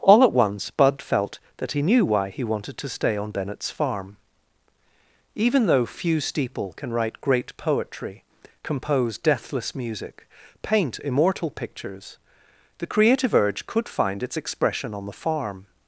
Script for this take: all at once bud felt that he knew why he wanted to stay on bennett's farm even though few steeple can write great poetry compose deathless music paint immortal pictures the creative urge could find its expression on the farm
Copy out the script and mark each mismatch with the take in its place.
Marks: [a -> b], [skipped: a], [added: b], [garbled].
all at once bud felt that he knew why he wanted to stay on bennett's farm even though few steeple can write great poetry compose deathless music paint immortal pictures the creative urge could find its expression on the farm